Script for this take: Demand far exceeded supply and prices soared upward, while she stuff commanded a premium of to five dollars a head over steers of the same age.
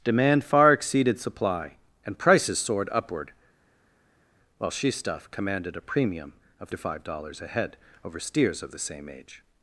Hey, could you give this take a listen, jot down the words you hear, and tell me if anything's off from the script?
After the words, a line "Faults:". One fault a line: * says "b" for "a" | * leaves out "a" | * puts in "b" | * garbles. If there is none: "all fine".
Demand far exceeded supply and prices soared upward, while she stuff commanded a premium of to five dollars a head over steers of the same age.
Faults:
all fine